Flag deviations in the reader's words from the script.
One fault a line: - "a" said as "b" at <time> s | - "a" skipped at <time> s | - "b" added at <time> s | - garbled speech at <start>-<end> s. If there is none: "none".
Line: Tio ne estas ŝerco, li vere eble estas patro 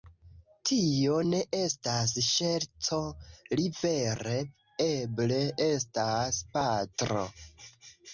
none